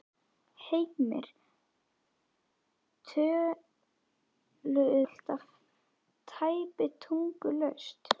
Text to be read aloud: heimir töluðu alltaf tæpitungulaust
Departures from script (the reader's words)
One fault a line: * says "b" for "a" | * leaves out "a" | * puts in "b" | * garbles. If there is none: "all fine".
all fine